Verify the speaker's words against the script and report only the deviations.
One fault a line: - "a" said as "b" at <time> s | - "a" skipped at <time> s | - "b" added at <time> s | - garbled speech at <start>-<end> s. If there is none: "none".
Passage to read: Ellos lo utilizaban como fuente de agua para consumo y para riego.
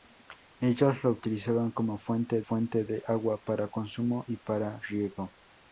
- "fuente" added at 2.4 s